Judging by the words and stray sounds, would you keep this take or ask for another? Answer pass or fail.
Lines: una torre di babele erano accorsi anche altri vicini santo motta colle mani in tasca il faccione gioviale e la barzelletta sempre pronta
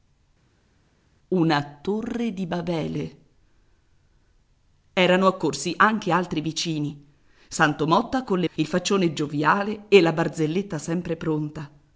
fail